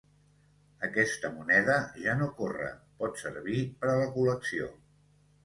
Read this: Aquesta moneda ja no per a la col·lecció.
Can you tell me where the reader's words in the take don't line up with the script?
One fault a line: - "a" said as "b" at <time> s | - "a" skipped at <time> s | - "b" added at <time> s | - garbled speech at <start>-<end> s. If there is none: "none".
- "corre pot servir" added at 2.4 s